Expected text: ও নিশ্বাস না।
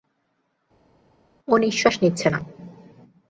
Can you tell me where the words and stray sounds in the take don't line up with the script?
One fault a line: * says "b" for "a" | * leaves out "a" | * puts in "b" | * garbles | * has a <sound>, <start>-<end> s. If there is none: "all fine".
* puts in "নিচ্ছে"